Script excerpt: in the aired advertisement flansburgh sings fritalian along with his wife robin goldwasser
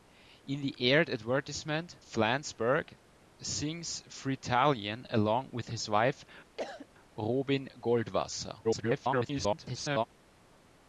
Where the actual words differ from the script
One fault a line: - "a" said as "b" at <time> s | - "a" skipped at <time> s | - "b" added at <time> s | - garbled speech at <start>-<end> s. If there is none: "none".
- garbled speech at 8.6-10.0 s